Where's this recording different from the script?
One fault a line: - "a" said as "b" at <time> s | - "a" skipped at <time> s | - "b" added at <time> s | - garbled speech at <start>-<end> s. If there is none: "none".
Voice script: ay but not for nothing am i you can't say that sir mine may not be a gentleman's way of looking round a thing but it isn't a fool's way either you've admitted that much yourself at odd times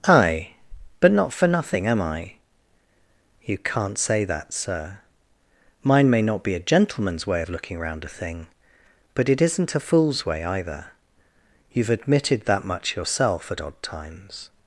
none